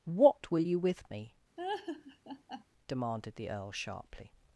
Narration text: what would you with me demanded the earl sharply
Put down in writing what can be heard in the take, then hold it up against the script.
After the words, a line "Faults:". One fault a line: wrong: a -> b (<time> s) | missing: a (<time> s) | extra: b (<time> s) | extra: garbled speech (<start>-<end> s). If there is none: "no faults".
what will you with me demanded the earl sharply
Faults:
wrong: would -> will (0.5 s)